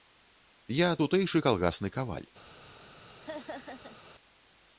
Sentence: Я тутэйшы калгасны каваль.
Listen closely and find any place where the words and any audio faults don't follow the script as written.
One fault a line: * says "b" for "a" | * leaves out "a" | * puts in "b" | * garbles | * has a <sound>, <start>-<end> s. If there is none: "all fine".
* has a laugh, 3.2-4.0 s